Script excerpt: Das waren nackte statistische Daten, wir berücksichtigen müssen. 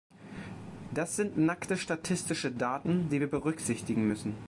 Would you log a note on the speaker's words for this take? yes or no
yes